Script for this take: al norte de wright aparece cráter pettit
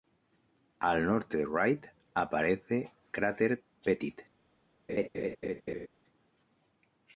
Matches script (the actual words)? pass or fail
pass